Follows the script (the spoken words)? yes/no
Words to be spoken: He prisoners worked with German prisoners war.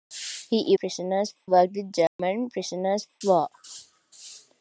yes